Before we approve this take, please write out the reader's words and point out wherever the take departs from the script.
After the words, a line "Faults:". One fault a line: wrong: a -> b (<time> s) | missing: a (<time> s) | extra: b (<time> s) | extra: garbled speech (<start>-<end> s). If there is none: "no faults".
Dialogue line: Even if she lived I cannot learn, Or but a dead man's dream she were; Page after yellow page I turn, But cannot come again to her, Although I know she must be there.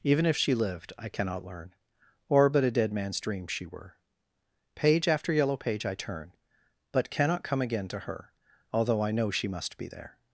Even if she lived I cannot learn, Or but a dead man's dream she were; Page after yellow page I turn, But cannot come again to her, Although I know she must be there.
Faults:
no faults